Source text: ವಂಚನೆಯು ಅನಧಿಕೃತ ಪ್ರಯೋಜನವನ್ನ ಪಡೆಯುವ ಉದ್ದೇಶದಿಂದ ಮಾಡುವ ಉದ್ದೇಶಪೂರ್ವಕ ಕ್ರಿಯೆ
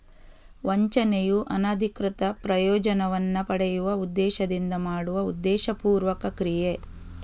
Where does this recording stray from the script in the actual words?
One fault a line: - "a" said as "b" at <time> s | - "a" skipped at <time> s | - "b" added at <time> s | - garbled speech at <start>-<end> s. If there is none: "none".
none